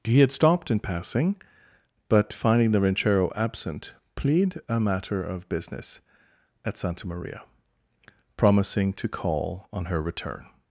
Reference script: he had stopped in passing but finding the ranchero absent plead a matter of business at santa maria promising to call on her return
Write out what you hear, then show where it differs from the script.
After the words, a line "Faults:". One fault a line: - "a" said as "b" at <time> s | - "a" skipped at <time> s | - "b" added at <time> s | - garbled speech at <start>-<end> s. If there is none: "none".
he had stopped in passing but finding the ranchero absent plead a matter of business at santa maria promising to call on her return
Faults:
none